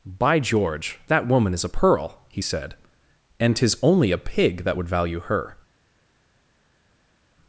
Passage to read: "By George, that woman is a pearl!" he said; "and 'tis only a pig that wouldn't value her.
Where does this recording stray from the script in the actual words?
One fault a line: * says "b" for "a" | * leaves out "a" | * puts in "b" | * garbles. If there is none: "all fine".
* says "would" for "wouldn't"